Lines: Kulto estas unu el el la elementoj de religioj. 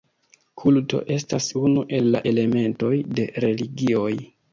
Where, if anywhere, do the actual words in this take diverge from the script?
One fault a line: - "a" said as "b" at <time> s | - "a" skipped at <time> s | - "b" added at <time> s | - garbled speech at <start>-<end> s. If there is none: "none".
- "el" skipped at 2.1 s